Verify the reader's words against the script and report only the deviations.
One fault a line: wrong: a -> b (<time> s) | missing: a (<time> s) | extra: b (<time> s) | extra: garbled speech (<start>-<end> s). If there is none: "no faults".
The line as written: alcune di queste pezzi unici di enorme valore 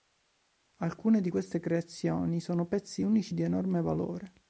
extra: creazioni sono (1.6 s)